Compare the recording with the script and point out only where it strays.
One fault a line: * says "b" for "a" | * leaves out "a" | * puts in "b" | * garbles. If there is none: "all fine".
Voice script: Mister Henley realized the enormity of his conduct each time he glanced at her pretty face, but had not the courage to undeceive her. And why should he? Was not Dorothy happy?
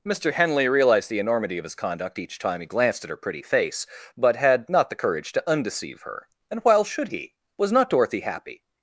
* says "while" for "why"